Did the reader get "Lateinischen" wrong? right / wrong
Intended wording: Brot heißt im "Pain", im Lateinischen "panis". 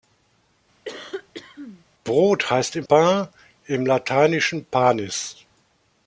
right